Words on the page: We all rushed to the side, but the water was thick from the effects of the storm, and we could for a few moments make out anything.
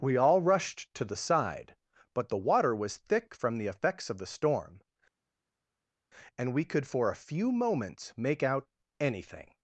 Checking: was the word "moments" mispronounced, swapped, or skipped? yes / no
no